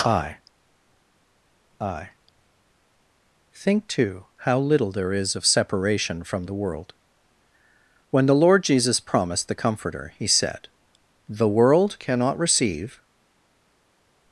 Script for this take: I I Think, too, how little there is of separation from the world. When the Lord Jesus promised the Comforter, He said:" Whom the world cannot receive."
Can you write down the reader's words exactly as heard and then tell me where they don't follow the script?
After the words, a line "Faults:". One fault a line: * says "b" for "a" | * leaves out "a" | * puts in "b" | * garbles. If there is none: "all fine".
I I Think, too, how little there is of separation from the world. When the Lord Jesus promised the Comforter, He said:" the world cannot receive."
Faults:
* leaves out "Whom"